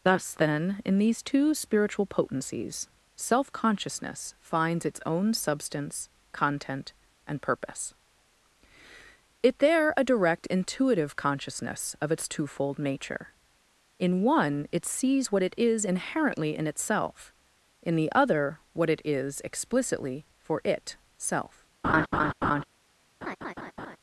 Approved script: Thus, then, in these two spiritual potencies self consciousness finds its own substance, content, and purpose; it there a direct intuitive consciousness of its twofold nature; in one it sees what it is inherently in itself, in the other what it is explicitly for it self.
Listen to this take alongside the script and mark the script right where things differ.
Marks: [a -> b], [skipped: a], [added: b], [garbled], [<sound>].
Thus, then, in these two spiritual potencies self consciousness finds its own substance, content, and purpose; it there a direct intuitive consciousness of its twofold nature; in one it sees what it is inherently in itself, in the other what it is explicitly for it self. [laugh] [laugh]